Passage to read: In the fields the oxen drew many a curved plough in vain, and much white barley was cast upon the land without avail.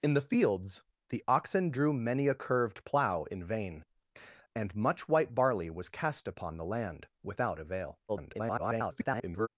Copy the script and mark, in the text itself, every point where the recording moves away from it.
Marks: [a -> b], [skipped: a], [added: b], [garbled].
In the fields the oxen drew many a curved plough in vain, and much white barley was cast upon the land without avail. [garbled]